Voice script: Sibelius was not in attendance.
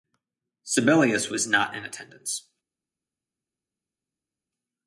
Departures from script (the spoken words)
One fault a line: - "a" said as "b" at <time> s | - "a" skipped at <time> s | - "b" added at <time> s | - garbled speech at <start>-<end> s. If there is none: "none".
none